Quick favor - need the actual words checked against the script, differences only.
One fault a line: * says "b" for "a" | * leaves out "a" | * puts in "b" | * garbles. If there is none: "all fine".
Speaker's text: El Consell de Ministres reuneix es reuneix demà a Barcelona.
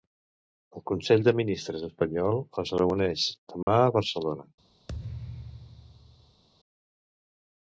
* says "espanyol" for "reuneix"